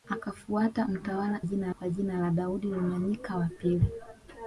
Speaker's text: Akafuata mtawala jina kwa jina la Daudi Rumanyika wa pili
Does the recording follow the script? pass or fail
pass